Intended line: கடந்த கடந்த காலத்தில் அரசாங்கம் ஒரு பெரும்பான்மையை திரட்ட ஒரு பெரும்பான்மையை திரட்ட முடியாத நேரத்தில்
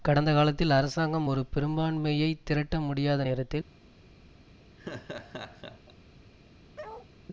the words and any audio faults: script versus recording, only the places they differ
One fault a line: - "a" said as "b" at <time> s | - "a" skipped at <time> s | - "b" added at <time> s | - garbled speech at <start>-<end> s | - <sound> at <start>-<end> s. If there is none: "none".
- "கடந்த" skipped at 0.3 s
- "ஒரு பெரும்பான்மையை திரட்ட" skipped at 2.8 s
- laugh at 4.8-5.9 s
- bark at 6.8-7.1 s